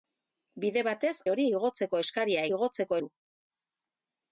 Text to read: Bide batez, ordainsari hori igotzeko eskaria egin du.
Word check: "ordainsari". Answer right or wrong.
wrong